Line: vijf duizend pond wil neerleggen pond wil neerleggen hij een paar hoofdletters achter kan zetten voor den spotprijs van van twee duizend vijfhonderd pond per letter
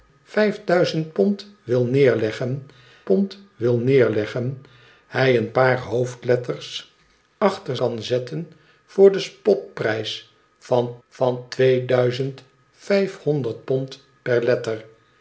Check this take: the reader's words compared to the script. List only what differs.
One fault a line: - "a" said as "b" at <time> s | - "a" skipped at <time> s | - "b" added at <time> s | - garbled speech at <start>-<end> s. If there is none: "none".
none